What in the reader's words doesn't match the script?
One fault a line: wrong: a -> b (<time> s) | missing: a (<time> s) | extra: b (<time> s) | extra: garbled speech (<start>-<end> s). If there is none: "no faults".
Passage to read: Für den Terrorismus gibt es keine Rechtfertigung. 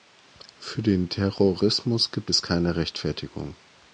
no faults